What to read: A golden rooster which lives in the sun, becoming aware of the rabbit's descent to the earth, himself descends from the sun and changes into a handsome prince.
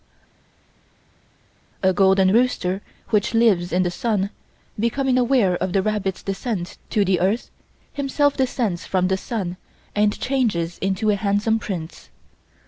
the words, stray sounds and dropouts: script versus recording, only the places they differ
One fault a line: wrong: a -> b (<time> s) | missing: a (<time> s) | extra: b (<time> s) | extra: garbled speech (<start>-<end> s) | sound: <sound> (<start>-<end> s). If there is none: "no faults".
no faults